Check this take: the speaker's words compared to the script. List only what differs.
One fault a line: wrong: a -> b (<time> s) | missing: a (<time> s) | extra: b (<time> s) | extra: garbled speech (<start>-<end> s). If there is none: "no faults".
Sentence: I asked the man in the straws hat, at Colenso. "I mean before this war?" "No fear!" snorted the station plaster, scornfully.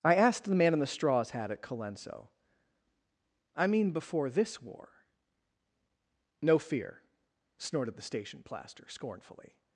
no faults